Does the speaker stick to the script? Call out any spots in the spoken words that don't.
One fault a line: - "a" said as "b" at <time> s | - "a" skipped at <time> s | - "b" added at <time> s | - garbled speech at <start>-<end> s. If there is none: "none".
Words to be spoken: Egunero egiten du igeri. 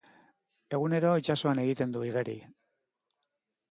- "itsasoan" added at 1.2 s